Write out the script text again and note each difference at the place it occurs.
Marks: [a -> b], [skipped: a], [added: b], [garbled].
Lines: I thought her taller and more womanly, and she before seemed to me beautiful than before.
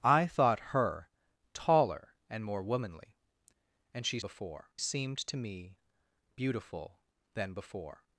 I thought her taller and more womanly, and she before seemed to me beautiful than before.